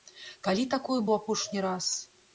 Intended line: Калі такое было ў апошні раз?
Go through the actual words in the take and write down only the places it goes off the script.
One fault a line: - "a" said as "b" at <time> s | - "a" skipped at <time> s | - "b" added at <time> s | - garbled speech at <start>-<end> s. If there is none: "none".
- "было" skipped at 1.0 s